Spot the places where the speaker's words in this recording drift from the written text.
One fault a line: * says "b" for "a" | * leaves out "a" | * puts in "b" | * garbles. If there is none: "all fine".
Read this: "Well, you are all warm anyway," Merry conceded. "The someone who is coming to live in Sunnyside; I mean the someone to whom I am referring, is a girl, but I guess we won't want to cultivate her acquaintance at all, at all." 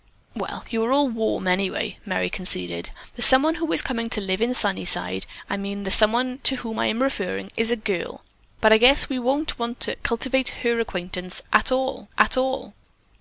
all fine